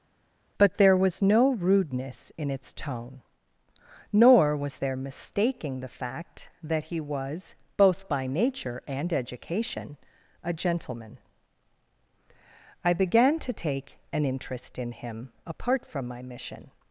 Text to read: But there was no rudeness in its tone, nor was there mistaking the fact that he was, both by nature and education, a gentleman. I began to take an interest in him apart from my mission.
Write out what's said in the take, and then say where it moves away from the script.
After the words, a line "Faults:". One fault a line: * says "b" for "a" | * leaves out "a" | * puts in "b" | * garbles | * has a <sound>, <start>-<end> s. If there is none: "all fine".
But there was no rudeness in its tone, nor was there mistaking the fact that he was, both by nature and education, a gentleman. I began to take an interest in him apart from my mission.
Faults:
all fine